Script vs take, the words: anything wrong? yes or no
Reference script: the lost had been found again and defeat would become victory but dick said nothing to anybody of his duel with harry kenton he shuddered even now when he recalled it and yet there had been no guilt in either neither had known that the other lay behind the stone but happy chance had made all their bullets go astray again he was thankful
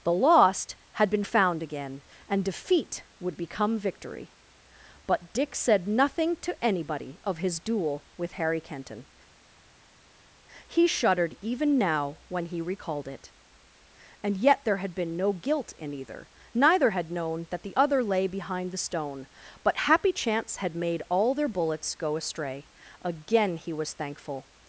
no